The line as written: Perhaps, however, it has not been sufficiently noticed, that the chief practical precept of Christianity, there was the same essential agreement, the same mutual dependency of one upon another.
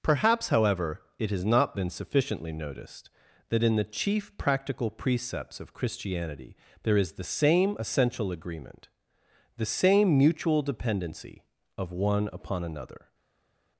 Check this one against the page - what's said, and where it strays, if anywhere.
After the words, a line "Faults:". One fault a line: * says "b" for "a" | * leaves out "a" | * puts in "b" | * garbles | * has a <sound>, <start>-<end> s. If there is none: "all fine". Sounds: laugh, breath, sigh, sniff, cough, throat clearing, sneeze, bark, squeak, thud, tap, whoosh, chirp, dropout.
Perhaps, however, it has not been sufficiently noticed, that in the chief practical precepts of Christianity, there is the same essential agreement, the same mutual dependency of one upon another.
Faults:
* puts in "in"
* says "precepts" for "precept"
* says "is" for "was"